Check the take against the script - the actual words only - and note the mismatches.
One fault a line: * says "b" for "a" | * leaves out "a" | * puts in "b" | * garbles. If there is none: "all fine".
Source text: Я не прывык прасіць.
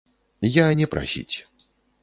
* leaves out "прывык"